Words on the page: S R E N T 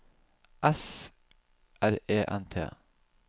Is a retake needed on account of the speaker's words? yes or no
no